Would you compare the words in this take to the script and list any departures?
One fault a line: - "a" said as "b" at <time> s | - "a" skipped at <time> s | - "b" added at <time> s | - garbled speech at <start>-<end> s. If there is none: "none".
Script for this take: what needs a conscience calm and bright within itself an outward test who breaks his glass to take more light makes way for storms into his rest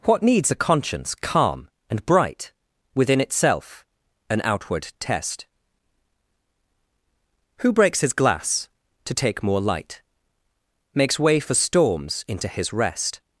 none